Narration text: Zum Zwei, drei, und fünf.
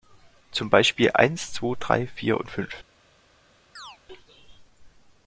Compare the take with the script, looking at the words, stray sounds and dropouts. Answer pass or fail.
fail